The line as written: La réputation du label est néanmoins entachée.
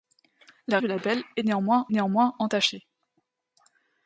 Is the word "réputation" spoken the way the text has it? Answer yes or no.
no